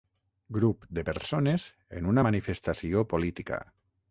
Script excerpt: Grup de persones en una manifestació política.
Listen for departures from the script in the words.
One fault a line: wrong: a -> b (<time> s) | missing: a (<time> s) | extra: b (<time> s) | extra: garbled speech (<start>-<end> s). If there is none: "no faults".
no faults